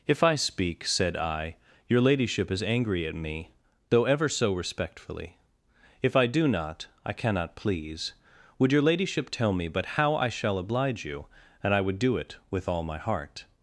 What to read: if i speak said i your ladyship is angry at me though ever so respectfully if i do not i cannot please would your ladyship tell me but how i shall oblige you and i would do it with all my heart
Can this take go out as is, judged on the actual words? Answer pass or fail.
pass